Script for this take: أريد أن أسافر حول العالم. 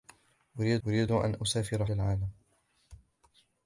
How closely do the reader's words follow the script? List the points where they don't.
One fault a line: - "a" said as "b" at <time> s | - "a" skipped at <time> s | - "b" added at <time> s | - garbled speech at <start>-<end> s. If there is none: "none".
- "أريد" added at 0.9 s
- "حول" skipped at 1.8 s